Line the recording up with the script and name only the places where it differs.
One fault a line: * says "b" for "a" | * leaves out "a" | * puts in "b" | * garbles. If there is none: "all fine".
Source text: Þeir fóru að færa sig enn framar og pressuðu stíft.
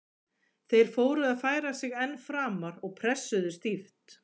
all fine